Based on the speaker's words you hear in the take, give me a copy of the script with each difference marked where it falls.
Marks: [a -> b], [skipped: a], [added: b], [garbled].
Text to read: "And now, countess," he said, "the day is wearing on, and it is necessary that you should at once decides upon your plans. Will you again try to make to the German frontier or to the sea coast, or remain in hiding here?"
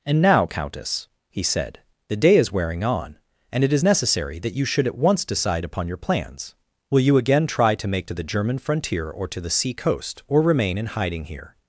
"And now, countess," he said, "the day is wearing on, and it is necessary that you should at once [decides -> decide] upon your plans. Will you again try to make to the German frontier or to the sea coast, or remain in hiding here?"